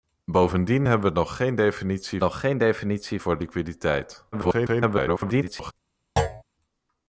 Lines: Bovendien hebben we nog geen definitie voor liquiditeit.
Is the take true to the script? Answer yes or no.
no